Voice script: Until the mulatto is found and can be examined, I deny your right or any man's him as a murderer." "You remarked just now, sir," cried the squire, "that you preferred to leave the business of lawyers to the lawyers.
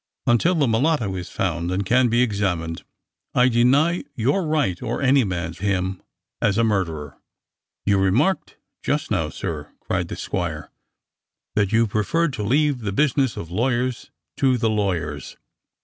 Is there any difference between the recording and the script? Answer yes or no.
no